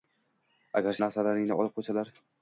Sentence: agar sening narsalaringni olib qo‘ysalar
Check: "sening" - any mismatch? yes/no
yes